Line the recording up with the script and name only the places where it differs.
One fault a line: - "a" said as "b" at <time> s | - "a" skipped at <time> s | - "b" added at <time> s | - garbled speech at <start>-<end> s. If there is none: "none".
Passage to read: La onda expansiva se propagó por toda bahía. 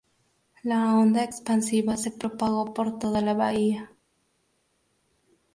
- "la" added at 3.2 s